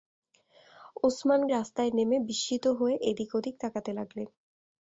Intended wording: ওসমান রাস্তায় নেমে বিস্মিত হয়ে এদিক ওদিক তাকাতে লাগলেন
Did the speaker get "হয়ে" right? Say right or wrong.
right